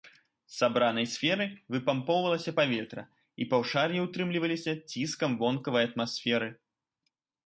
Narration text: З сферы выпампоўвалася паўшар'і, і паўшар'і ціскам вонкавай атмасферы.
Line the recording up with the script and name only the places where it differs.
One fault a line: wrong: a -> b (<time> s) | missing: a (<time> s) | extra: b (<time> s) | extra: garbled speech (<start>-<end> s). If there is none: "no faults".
extra: сабранай (0.6 s)
wrong: паўшар'і -> паветра (2.6 s)
extra: ўтрымліваліся (4.1 s)